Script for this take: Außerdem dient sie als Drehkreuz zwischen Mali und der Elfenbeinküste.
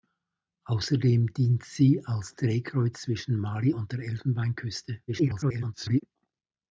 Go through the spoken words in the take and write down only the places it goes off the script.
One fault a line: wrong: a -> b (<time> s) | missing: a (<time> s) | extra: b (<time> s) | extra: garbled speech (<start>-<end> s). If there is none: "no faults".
extra: garbled speech (5.1-6.0 s)